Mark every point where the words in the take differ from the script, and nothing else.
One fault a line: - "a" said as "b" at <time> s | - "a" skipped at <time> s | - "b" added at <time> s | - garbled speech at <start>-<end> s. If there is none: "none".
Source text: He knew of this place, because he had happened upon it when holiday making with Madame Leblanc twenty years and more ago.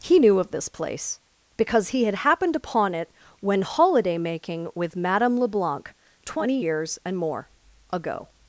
none